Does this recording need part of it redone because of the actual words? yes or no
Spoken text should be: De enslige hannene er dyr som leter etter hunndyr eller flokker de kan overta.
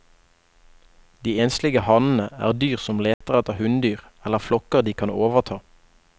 no